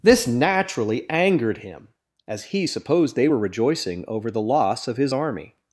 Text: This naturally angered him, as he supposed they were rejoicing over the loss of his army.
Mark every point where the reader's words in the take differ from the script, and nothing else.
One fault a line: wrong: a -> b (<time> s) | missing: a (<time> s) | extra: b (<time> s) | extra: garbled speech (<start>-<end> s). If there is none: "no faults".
no faults